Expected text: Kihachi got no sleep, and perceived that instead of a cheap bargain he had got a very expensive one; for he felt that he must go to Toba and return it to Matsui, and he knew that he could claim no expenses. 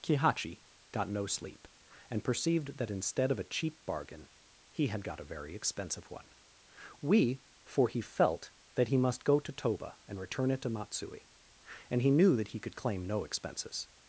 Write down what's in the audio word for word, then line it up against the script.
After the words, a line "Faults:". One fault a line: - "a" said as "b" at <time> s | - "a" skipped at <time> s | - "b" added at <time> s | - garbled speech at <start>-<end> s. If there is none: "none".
Kihachi got no sleep, and perceived that instead of a cheap bargain he had got a very expensive one; we for he felt that he must go to Toba and return it to Matsui, and he knew that he could claim no expenses.
Faults:
- "we" added at 7.0 s